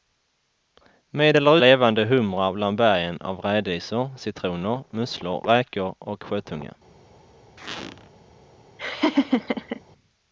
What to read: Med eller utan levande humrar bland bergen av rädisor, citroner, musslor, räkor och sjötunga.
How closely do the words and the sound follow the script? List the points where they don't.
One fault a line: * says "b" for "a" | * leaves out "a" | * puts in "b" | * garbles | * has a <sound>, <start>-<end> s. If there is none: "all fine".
* leaves out "utan"
* has a squeak, 7.6-8.1 s
* has a laugh, 8.8-9.8 s